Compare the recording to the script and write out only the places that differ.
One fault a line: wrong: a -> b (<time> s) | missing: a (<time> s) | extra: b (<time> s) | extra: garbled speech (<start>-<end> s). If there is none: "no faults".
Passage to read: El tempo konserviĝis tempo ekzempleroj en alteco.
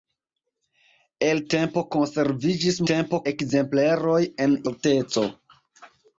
no faults